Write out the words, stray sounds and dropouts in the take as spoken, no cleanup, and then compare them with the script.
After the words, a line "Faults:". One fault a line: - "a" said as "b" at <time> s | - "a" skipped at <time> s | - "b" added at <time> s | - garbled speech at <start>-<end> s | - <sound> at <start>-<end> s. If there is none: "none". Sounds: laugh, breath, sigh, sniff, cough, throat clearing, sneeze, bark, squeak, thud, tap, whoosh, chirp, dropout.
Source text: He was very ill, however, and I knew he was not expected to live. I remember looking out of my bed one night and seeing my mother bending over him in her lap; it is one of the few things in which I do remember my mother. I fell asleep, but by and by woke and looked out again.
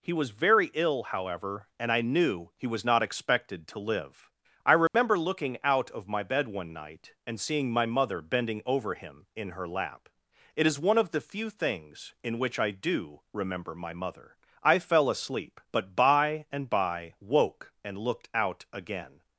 He was very ill, however, and I knew he was not expected to live. I remember looking out of my bed one night and seeing my mother bending over him in her lap; it is one of the few things in which I do remember my mother. I fell asleep, but by and by woke and looked out again.
Faults:
- dropout at 4.9-4.9 s